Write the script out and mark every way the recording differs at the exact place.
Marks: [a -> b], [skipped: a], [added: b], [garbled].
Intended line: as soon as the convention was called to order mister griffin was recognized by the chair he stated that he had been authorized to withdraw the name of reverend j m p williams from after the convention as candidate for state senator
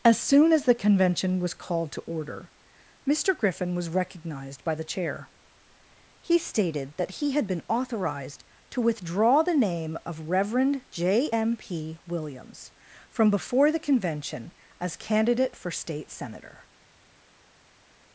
as soon as the convention was called to order mister griffin was recognized by the chair he stated that he had been authorized to withdraw the name of reverend j m p williams from [after -> before] the convention as candidate for state senator